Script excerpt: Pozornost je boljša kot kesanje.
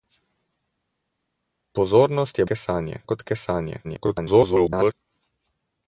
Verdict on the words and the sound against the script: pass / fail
fail